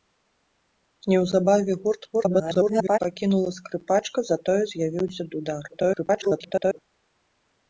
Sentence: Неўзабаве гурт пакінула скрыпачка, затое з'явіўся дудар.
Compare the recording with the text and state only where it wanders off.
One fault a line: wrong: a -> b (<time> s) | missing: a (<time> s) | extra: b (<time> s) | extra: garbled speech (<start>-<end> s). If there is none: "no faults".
extra: garbled speech (2.1-3.0 s)
extra: garbled speech (5.7-6.8 s)